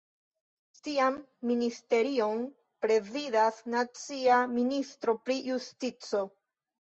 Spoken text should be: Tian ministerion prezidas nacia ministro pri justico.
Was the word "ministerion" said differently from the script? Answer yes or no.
no